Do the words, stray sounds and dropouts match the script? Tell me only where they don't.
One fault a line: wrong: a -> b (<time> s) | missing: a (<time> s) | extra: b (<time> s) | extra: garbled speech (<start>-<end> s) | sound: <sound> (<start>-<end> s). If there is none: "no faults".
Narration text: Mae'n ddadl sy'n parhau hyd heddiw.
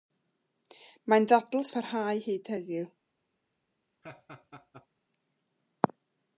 missing: sy'n (1.7 s)
sound: laugh (4.0-4.9 s)